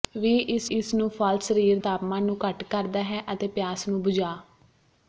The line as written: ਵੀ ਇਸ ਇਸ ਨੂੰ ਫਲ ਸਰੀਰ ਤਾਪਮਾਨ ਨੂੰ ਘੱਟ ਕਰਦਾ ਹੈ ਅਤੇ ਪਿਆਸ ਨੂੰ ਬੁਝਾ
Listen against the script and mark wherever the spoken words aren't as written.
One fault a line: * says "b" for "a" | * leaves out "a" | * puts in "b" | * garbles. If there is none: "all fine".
all fine